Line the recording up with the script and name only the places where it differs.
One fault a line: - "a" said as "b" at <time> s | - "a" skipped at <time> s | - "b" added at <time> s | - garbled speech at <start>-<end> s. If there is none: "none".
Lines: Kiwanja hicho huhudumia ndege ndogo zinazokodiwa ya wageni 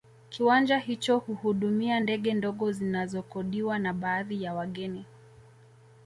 - "na baadhi" added at 3.8 s